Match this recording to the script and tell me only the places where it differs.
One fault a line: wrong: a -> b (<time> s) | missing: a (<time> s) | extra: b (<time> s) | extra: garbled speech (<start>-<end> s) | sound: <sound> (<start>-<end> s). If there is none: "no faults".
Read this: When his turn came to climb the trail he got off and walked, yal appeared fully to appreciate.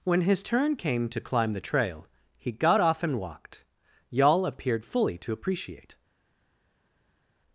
no faults